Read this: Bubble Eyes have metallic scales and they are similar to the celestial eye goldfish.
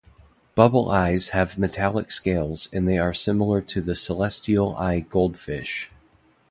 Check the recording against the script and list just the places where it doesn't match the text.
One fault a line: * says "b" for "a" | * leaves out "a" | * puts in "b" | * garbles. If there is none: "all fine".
all fine